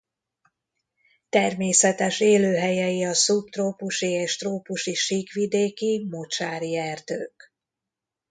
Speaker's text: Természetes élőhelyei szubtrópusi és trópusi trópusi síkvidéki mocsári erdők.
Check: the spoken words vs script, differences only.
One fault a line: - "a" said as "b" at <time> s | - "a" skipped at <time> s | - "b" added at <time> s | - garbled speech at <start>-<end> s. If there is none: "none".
- "a" added at 3.0 s
- "trópusi" skipped at 4.9 s